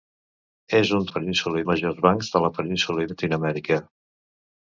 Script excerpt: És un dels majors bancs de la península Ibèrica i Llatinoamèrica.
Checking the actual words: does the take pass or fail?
fail